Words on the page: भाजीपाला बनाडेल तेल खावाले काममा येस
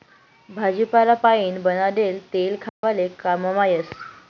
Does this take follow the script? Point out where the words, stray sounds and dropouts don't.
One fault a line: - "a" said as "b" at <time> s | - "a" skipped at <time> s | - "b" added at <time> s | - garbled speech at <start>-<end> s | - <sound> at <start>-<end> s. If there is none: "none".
- "पाइन" added at 1.2 s
- dropout at 2.7-2.8 s